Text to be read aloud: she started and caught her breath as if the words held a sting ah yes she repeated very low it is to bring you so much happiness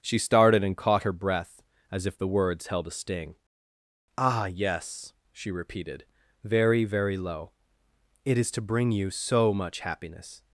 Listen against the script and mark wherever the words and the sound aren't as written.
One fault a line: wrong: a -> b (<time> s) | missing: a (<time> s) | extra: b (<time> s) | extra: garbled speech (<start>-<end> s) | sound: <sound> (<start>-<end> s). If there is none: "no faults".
extra: very (6.8 s)